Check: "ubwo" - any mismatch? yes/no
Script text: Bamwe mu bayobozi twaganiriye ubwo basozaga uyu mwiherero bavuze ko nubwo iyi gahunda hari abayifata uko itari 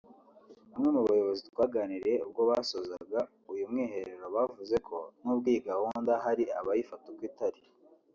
no